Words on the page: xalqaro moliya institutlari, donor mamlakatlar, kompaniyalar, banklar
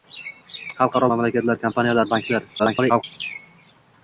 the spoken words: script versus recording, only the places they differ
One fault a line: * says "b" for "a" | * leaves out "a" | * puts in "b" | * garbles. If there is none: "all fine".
* leaves out "moliya institutlari donor"
* garbles